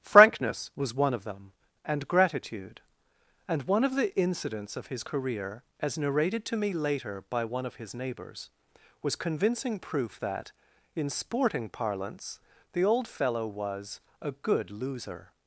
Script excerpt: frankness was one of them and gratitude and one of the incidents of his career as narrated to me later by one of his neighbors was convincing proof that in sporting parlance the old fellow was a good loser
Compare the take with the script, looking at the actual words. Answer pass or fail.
pass